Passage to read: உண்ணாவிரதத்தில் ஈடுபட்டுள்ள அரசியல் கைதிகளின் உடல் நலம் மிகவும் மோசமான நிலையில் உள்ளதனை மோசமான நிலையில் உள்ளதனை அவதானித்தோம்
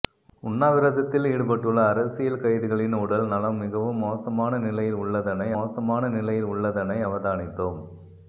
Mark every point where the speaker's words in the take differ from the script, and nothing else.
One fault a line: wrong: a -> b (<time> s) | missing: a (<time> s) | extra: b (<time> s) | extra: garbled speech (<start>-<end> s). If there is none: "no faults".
no faults